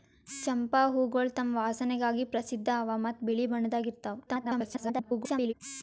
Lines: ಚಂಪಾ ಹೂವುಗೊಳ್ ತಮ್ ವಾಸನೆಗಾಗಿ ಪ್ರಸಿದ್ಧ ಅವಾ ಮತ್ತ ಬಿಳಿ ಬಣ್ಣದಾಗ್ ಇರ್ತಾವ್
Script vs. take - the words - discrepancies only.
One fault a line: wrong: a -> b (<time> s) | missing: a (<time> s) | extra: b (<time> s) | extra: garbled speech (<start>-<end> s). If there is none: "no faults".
extra: garbled speech (4.3-5.5 s)